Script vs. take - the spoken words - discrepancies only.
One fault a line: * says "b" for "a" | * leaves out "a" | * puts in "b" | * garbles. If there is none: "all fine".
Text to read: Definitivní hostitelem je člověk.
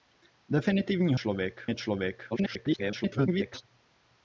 * says "člověk" for "hostitelem"
* garbles